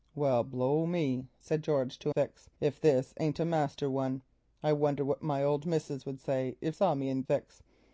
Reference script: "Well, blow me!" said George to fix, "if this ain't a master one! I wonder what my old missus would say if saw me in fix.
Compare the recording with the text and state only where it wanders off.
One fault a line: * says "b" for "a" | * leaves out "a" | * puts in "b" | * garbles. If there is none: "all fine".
all fine